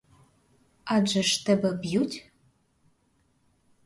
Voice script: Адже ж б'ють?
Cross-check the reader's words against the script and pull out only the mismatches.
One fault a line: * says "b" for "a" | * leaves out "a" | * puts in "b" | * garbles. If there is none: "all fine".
* puts in "тебе"